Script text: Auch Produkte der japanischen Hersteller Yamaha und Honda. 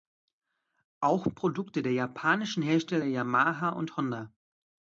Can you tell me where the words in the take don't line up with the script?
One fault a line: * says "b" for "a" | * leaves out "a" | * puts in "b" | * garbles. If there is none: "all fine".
all fine